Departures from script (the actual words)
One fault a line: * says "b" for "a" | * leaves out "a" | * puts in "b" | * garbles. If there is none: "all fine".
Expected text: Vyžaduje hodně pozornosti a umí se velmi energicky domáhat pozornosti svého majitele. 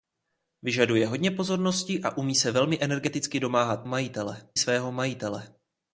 * says "majitele" for "pozornosti"